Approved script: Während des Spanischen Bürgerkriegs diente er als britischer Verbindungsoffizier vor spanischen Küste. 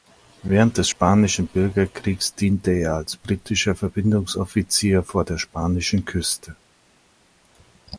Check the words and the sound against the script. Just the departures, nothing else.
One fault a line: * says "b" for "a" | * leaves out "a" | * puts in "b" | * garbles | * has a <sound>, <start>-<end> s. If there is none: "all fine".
* puts in "der"